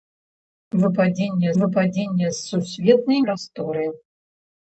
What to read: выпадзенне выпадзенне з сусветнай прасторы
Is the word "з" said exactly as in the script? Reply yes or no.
yes